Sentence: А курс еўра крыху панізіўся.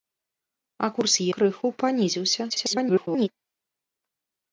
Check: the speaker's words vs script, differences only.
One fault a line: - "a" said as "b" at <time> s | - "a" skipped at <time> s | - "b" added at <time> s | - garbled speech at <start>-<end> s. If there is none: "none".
- "еўра" skipped at 1.2 s
- garbled speech at 2.5-3.3 s